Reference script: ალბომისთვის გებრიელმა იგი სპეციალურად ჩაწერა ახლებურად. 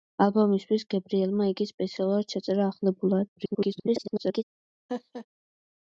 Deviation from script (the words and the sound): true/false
true